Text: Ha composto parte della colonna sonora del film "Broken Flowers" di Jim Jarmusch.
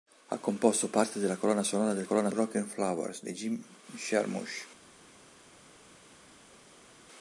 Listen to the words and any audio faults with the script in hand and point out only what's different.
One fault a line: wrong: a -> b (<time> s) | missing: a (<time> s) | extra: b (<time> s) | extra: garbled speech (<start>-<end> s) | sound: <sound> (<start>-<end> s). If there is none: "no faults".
wrong: film -> colonna (2.0 s)